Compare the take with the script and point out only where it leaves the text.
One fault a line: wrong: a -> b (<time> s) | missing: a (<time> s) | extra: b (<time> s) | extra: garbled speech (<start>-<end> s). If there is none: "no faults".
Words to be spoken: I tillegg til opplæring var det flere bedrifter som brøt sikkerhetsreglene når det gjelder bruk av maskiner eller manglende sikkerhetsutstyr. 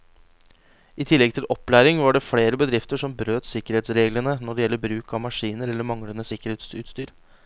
no faults